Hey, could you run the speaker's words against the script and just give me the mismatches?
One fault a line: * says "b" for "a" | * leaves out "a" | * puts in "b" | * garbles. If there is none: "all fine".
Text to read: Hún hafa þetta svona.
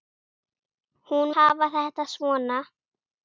all fine